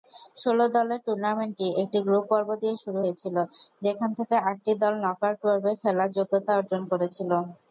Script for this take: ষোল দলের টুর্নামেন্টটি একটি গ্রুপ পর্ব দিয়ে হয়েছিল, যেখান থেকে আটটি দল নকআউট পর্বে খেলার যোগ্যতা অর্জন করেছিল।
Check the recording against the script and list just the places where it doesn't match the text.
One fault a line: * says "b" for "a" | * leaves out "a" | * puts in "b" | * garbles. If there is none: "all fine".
* puts in "শুরু"